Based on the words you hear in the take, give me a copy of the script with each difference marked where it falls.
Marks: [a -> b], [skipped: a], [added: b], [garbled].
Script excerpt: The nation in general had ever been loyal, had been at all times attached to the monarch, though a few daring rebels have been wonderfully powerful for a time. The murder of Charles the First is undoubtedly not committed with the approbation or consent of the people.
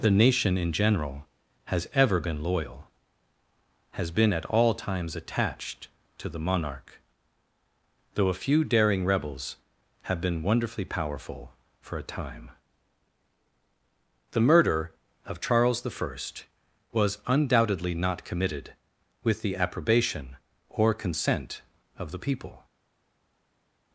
The nation in general [had -> has] ever been loyal, [had -> has] been at all times attached to the monarch, though a few daring rebels have been wonderfully powerful for a time. The murder of Charles the First [is -> was] undoubtedly not committed with the approbation or consent of the people.